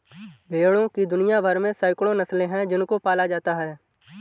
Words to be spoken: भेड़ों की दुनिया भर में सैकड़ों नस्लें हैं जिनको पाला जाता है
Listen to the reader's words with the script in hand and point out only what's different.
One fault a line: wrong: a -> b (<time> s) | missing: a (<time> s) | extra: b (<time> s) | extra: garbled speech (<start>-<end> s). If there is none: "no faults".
no faults